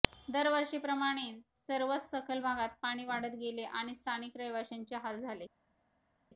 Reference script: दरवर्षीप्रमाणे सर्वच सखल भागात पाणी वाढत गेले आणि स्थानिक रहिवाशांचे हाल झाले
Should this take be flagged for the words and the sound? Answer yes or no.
no